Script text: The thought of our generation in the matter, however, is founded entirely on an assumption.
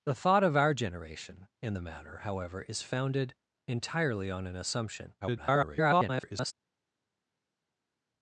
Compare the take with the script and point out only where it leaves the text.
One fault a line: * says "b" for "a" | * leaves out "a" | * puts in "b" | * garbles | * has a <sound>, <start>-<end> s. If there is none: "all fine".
* garbles